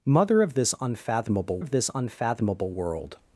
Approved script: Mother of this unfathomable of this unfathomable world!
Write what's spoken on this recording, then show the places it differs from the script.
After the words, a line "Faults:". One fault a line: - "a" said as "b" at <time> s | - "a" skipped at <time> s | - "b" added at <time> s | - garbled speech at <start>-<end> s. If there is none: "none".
Mother of this unfathomable of this unfathomable world!
Faults:
none